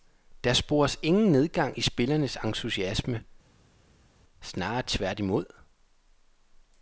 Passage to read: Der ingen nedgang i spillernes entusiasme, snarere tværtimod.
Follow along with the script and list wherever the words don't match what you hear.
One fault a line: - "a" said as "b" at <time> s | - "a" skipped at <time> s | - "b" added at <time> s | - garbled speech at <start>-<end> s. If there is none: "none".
- "spores" added at 0.5 s